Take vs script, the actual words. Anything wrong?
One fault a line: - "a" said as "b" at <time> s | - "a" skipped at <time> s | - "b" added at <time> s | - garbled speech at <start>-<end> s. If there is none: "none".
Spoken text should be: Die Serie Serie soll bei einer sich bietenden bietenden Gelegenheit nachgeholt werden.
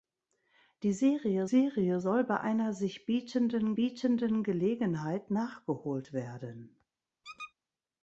none